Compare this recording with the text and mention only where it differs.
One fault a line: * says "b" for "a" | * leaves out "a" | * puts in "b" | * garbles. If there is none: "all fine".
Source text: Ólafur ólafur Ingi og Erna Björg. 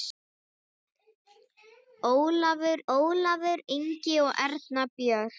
all fine